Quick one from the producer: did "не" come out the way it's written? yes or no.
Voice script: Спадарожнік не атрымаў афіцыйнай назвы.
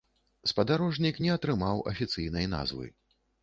yes